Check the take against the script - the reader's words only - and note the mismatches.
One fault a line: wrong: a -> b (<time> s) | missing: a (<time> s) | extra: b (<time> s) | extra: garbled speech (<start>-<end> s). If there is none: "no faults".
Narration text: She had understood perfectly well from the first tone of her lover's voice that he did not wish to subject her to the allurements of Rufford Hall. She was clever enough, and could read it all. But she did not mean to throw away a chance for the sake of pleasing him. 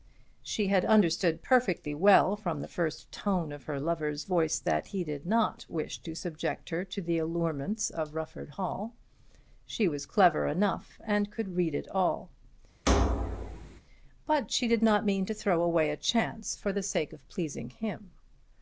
no faults